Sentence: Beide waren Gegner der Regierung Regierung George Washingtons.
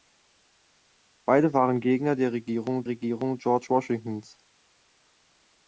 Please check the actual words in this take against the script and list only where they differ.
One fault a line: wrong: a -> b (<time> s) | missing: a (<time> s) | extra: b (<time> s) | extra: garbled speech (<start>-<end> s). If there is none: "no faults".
no faults